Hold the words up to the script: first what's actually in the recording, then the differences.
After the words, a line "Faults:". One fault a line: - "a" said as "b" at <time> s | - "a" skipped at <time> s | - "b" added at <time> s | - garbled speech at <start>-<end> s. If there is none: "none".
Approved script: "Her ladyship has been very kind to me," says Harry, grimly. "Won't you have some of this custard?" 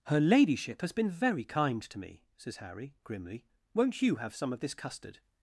"Her ladyship has been very kind to me," says Harry, grimly. "Won't you have some of this custard?"
Faults:
none